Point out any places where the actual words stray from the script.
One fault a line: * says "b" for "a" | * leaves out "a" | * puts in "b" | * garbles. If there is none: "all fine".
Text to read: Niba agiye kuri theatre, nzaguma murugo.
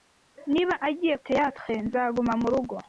* leaves out "kuri"